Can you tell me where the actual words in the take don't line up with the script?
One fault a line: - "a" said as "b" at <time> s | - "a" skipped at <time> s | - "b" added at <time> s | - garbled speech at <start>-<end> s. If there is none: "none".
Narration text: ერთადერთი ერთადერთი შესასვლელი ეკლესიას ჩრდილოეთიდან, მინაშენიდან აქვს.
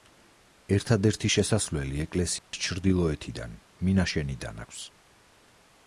- "ერთადერთი" skipped at 1.3 s